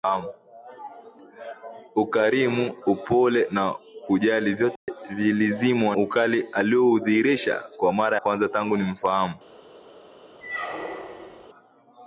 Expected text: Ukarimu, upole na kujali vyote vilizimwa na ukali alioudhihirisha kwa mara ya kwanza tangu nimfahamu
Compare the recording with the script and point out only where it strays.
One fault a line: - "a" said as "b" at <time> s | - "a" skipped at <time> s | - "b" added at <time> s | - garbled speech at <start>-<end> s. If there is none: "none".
- "na" skipped at 6.0 s
- "ya" skipped at 8.2 s